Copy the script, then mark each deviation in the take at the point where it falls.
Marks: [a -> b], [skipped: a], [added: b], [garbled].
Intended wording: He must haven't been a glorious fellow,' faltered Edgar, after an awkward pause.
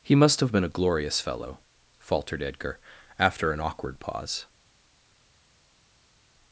He must [haven't -> have] been a glorious fellow,' faltered Edgar, after an awkward pause.